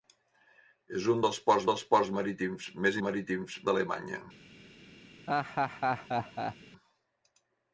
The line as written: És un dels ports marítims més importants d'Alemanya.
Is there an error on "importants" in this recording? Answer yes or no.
yes